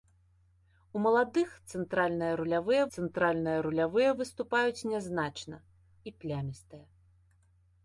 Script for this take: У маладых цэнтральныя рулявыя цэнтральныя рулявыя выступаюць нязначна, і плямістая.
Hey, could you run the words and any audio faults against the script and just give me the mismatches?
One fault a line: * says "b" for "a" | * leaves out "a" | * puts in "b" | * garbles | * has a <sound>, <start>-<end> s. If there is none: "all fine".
all fine